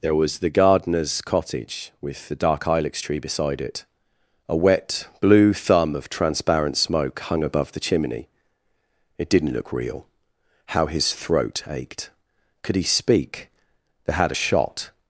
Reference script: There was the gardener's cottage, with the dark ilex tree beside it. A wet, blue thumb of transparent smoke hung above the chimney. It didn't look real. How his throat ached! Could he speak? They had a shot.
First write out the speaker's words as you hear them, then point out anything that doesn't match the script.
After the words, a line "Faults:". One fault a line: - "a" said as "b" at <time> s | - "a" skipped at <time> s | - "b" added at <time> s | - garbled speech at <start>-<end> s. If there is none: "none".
There was the gardener's cottage, with the dark ilex tree beside it. A wet, blue thumb of transparent smoke hung above the chimney. It didn't look real. How his throat ached! Could he speak? They had a shot.
Faults:
none